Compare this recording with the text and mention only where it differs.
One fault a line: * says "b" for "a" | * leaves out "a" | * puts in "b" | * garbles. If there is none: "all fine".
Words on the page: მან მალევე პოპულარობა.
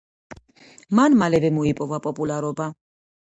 * puts in "მოიპოვა"